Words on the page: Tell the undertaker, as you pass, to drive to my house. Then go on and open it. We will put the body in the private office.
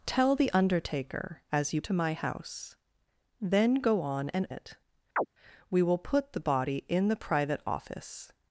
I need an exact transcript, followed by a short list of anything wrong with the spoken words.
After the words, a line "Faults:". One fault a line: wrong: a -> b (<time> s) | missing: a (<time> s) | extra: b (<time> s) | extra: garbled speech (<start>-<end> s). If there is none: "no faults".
Tell the undertaker, as you to my house. Then go on and it. We will put the body in the private office.
Faults:
missing: pass (1.8 s)
missing: drive to (1.9 s)
missing: open (4.5 s)